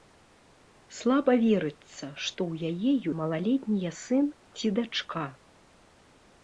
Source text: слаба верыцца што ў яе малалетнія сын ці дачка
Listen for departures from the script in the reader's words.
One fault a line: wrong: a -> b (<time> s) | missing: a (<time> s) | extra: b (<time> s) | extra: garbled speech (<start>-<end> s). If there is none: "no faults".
no faults